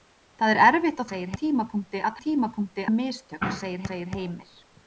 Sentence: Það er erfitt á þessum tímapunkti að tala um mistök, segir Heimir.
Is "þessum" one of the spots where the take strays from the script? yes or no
yes